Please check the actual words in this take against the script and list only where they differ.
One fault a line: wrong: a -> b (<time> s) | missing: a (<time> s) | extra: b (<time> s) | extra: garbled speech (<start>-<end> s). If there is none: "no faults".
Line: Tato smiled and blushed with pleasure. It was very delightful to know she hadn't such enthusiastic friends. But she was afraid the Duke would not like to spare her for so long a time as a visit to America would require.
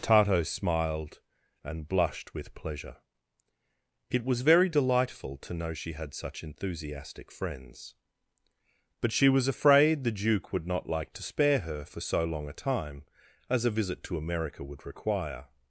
wrong: hadn't -> had (5.9 s)